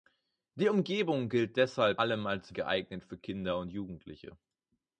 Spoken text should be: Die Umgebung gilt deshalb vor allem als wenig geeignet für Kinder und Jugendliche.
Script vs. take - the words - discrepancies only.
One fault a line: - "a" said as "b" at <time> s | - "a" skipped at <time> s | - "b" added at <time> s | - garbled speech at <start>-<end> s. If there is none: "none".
- "vor" skipped at 2.0 s
- "wenig" skipped at 2.6 s